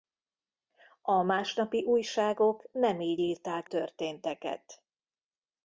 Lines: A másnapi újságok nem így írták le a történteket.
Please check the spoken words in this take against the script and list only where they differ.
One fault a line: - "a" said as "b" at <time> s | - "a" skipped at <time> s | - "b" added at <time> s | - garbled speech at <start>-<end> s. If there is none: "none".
- "le a" skipped at 3.7 s